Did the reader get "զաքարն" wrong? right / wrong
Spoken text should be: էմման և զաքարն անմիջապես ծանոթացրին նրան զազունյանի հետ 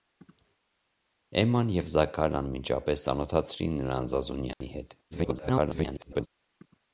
right